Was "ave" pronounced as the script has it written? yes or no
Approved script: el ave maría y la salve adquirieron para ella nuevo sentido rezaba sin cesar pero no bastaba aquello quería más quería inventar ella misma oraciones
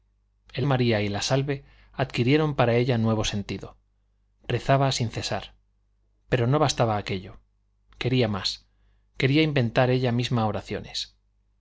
no